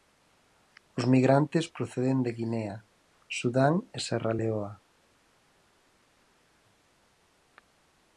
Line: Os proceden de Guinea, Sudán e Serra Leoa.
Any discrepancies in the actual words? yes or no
yes